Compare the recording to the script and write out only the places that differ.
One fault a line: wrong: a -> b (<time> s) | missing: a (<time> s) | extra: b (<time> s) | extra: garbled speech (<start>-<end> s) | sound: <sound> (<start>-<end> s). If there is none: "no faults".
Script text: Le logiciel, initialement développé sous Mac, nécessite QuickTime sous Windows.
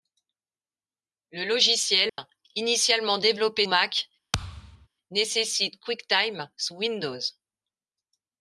sound: dropout (2.1-2.2 s)
missing: sous (3.7 s)
sound: thud (4.3-4.9 s)